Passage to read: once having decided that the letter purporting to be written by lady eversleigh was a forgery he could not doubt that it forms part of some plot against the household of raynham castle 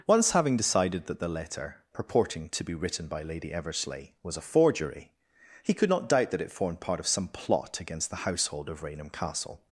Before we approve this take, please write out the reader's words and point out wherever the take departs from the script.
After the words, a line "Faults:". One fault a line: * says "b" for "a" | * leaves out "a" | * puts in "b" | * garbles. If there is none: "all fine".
once having decided that the letter purporting to be written by lady eversleigh was a forgery he could not doubt that it formed part of some plot against the household of raynham castle
Faults:
* says "formed" for "forms"